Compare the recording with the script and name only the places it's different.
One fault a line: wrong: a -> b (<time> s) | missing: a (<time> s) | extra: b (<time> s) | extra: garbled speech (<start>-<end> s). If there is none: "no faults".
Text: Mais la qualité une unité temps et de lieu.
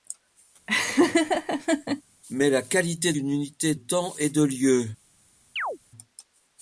no faults